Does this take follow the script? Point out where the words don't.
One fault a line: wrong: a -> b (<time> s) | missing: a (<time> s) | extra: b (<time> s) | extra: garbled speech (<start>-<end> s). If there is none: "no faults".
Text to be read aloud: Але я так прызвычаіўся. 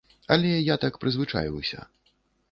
no faults